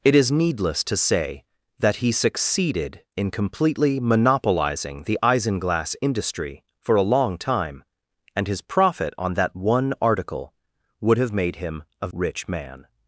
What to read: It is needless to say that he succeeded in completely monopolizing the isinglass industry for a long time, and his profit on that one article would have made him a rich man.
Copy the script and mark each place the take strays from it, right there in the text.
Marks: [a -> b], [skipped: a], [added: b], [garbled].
It is needless to say that he succeeded in completely monopolizing the isinglass industry for a long time, and his profit on that one article would have made him a rich man.